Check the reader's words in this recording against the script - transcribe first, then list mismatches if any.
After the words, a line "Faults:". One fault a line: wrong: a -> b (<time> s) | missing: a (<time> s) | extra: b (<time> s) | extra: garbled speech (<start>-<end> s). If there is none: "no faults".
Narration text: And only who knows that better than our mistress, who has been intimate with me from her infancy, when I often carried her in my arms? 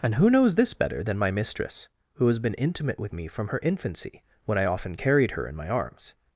And who knows this better than my mistress, who has been intimate with me from her infancy, when I often carried her in my arms?
Faults:
missing: only (0.1 s)
wrong: that -> this (0.6 s)
wrong: our -> my (1.2 s)